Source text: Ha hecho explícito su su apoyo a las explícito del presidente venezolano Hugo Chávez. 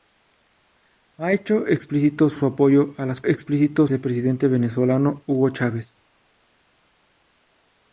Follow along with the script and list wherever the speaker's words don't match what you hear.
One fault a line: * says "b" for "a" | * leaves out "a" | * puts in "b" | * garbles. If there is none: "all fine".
all fine